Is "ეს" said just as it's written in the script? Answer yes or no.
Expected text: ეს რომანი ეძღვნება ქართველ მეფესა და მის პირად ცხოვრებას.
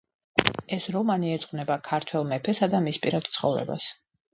yes